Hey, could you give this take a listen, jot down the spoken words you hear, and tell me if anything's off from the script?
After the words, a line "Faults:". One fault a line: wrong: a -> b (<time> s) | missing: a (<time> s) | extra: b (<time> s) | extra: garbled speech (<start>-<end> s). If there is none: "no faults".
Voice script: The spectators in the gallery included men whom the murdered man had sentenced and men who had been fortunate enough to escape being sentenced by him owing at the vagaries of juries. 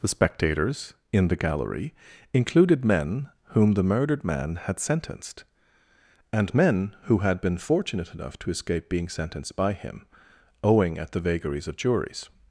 The spectators in the gallery included men whom the murdered man had sentenced and men who had been fortunate enough to escape being sentenced by him owing at the vagaries of juries.
Faults:
no faults